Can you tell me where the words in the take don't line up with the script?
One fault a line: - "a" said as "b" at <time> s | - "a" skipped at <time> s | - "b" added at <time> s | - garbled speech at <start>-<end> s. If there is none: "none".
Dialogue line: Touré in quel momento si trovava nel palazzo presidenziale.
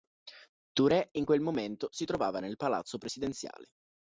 none